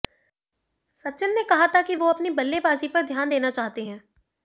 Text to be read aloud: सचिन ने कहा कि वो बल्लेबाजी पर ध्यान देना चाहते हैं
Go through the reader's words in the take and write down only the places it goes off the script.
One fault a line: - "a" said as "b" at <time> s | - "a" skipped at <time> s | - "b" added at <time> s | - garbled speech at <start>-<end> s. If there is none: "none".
- "था" added at 1.7 s
- "अपनी" added at 2.1 s